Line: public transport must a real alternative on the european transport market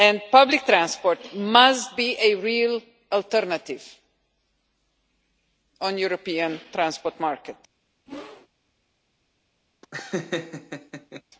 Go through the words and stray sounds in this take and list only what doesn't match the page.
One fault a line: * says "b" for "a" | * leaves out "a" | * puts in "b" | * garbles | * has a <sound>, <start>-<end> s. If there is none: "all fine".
* puts in "be"
* has a whoosh, 8.1-8.5 s
* has a laugh, 9.8-11.2 s